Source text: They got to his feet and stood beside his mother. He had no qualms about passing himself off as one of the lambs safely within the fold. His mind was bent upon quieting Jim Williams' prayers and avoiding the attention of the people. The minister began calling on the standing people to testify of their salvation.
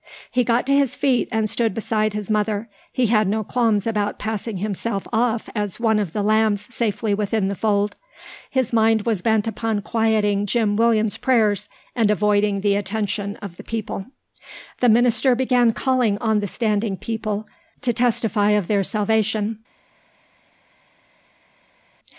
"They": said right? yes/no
no